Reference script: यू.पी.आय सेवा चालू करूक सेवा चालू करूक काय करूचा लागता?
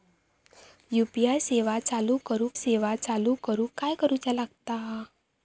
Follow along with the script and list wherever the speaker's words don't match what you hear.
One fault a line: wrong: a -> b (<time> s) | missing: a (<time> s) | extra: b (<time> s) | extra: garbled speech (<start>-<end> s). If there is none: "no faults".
no faults